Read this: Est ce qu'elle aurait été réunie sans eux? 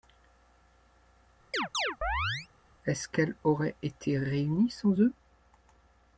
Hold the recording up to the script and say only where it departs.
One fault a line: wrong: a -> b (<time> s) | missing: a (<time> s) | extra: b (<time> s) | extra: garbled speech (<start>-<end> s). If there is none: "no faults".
no faults